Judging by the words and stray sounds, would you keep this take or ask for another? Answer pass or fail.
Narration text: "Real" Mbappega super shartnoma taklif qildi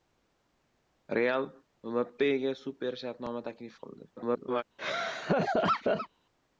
fail